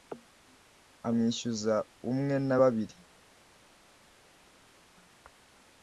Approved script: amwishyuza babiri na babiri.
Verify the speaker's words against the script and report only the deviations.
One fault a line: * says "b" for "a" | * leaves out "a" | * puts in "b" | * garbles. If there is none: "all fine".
* says "umwe" for "babiri"